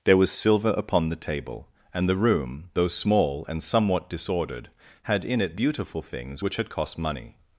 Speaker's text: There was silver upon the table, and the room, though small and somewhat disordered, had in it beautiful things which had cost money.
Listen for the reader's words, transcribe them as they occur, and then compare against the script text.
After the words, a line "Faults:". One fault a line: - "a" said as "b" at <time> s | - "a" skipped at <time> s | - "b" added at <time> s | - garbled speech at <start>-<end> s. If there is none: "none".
There was silver upon the table, and the room, though small and somewhat disordered, had in it beautiful things which had cost money.
Faults:
none